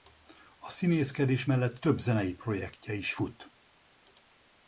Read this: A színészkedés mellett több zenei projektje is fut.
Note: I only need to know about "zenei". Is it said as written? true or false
true